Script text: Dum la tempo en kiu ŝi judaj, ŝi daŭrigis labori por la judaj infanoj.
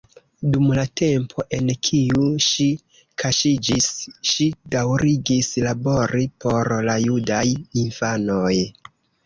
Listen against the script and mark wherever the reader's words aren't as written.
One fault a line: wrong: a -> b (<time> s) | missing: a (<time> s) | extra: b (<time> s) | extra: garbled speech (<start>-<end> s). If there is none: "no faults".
wrong: judaj -> kaŝiĝis (3.2 s)